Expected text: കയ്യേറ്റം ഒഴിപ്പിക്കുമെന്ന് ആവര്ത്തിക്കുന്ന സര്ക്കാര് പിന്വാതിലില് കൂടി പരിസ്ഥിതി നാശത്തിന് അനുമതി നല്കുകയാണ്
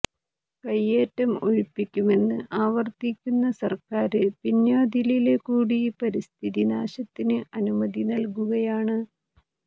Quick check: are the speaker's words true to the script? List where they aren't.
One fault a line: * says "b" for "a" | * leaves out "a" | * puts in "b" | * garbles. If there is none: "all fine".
all fine